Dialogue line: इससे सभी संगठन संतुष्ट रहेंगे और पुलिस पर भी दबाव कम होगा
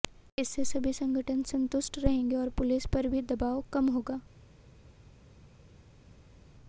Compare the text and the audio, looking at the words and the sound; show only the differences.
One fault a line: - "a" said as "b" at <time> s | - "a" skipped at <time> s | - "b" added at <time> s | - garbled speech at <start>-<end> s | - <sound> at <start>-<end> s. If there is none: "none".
none